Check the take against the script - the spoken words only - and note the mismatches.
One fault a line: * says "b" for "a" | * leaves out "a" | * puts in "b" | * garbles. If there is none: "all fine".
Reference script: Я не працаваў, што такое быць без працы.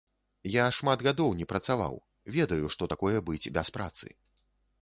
* puts in "шмат гадоў"
* puts in "ведаю"